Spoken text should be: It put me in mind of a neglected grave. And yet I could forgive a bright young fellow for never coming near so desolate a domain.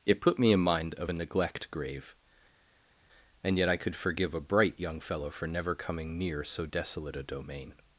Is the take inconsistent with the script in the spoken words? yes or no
yes